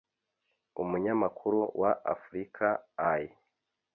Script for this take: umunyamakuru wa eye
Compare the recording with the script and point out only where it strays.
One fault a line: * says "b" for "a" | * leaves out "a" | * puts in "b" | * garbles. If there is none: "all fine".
* puts in "africa"